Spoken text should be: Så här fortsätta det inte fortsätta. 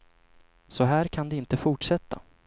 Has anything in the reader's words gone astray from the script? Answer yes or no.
yes